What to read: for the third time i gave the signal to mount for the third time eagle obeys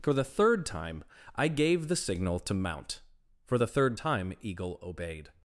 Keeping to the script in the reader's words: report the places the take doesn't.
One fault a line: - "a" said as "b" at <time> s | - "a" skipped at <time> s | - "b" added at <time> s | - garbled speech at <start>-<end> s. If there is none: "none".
- "obeys" said as "obeyed" at 4.8 s